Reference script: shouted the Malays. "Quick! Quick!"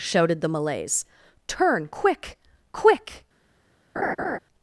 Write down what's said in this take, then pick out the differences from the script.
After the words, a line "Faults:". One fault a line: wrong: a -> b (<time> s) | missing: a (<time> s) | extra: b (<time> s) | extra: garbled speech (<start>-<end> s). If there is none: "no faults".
shouted the Malays. "Turn quick! Quick!"
Faults:
extra: Turn (1.5 s)